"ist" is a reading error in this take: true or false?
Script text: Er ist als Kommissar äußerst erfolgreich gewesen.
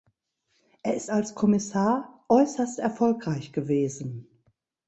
false